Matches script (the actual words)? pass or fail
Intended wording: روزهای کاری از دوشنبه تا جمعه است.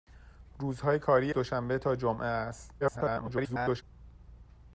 fail